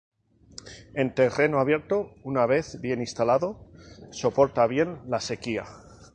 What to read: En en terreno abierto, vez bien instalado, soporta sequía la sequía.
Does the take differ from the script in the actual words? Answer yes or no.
yes